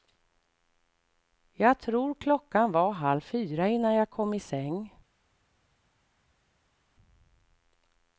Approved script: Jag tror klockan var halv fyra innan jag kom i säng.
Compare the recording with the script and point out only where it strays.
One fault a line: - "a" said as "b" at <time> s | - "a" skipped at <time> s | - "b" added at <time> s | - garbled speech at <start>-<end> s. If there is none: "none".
none